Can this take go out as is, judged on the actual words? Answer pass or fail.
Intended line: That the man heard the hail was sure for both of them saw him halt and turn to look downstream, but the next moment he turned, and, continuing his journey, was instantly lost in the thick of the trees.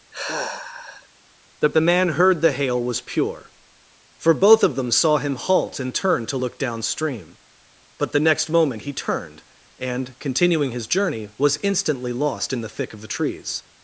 fail